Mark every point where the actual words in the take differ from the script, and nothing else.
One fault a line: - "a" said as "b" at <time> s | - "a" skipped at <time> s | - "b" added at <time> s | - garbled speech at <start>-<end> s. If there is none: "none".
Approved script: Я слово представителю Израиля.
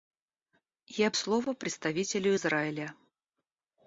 none